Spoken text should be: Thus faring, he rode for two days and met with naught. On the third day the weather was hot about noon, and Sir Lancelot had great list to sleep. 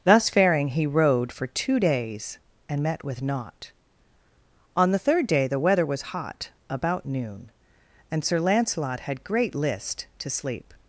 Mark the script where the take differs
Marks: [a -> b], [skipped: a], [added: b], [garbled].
Thus faring, he rode for two days and met with naught. On the third day the weather was hot about noon, and Sir Lancelot had great list to sleep.